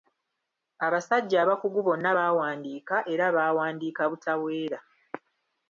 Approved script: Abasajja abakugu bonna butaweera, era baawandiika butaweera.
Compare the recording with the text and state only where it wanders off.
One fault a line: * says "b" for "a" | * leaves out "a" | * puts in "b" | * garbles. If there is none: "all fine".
* says "baawandiika" for "butaweera"